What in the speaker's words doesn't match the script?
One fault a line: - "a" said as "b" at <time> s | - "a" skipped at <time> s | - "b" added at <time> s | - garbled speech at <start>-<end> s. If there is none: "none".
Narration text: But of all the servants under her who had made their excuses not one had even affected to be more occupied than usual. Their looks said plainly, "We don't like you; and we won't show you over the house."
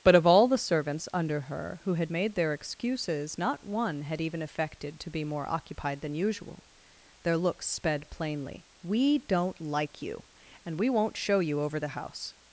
- "said" said as "sped" at 7.7 s